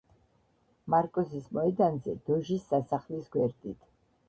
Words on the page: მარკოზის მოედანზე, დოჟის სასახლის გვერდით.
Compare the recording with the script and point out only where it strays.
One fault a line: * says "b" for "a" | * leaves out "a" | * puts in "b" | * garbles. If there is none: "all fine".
all fine